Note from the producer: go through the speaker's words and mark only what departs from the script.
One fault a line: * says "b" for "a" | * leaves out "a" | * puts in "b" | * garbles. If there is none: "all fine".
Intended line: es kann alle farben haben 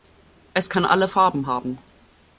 all fine